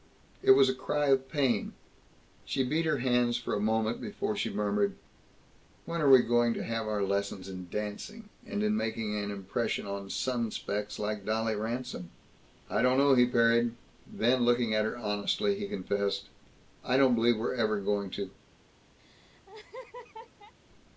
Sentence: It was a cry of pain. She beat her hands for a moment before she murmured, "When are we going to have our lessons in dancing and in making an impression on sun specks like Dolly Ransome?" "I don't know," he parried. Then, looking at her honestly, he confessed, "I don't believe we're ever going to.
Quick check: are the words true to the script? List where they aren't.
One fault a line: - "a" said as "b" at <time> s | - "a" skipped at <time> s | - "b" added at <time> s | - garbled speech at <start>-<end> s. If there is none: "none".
none